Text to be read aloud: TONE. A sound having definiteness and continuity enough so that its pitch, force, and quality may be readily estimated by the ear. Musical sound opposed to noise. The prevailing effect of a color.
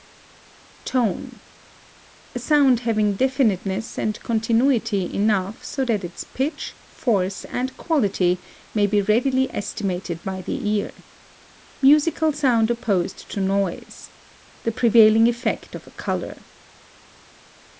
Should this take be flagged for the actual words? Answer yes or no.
no